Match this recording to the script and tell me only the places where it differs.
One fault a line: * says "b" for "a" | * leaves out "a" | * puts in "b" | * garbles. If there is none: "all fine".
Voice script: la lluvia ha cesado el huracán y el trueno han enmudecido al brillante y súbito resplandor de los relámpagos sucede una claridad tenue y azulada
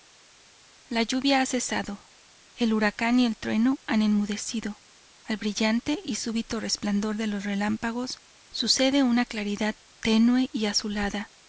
all fine